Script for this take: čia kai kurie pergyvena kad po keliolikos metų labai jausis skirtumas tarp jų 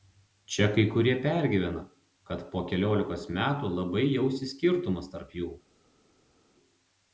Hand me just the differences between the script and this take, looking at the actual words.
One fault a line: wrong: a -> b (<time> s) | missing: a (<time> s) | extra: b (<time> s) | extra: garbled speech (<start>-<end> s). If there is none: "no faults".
no faults